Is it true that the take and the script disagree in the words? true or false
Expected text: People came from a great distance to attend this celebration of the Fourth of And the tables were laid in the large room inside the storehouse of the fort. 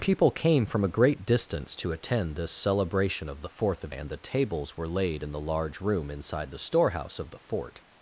false